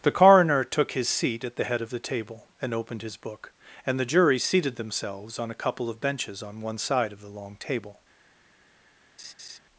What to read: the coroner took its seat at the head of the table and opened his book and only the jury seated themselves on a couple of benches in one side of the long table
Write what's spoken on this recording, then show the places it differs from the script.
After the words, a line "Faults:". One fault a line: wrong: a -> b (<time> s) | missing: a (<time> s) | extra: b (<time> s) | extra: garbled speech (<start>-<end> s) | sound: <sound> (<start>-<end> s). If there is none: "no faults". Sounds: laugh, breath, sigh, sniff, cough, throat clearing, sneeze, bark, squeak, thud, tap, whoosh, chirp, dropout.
the coroner took his seat at the head of the table and opened his book and the jury seated themselves on a couple of benches on one side of the long table
Faults:
wrong: its -> his (0.9 s)
missing: only (4.0 s)
wrong: in -> on (6.4 s)
sound: laugh (9.2-9.6 s)